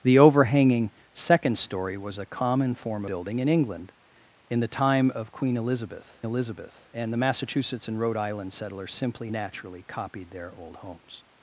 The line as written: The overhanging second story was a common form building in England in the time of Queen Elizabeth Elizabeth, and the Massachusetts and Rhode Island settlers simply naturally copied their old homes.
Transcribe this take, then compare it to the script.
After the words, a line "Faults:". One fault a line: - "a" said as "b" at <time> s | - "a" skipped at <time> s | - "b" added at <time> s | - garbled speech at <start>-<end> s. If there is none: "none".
The overhanging second story was a common form building in England in the time of Queen Elizabeth Elizabeth, and the Massachusetts and Rhode Island settlers simply naturally copied their old homes.
Faults:
none